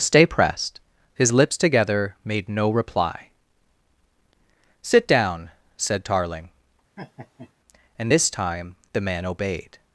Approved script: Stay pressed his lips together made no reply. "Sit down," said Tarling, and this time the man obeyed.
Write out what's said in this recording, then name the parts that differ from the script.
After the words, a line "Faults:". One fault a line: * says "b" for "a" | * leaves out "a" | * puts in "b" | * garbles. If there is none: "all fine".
Stay pressed his lips together made no reply. "Sit down," said Tarling, and this time the man obeyed.
Faults:
all fine